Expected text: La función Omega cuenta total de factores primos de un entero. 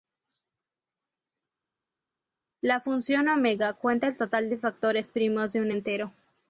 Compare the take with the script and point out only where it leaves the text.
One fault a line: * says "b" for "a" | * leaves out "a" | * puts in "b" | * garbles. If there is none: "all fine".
* puts in "el"